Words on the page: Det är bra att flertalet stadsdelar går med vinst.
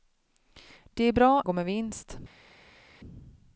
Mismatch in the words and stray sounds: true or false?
true